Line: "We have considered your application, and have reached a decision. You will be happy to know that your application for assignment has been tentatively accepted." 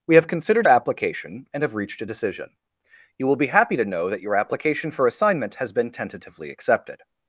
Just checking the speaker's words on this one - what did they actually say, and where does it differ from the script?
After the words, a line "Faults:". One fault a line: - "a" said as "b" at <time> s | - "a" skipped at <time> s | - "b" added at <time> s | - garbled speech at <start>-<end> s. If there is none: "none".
"We have considered application, and have reached a decision. You will be happy to know that your application for assignment has been tentatively accepted."
Faults:
- "your" skipped at 0.7 s